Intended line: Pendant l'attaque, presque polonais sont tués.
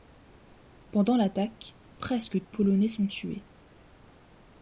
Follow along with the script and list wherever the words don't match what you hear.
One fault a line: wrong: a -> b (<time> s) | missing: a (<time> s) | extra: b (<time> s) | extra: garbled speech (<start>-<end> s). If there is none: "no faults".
no faults